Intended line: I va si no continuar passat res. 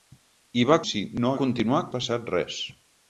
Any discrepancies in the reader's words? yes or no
no